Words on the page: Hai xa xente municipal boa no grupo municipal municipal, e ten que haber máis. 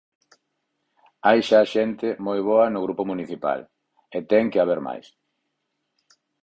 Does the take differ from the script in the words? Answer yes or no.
yes